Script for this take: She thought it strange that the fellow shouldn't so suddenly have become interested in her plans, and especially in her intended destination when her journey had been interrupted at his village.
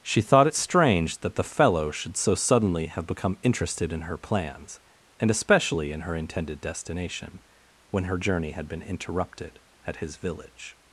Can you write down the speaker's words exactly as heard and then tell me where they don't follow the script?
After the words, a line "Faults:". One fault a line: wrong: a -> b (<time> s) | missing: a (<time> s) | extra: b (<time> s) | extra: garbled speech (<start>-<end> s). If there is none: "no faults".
She thought it strange that the fellow should so suddenly have become interested in her plans, and especially in her intended destination when her journey had been interrupted at his village.
Faults:
wrong: shouldn't -> should (1.9 s)